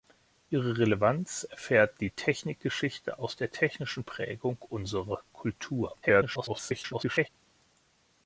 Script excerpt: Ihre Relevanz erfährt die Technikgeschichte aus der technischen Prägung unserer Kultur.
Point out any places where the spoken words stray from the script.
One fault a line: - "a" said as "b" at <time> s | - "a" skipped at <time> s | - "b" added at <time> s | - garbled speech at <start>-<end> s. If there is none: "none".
- garbled speech at 6.0-7.3 s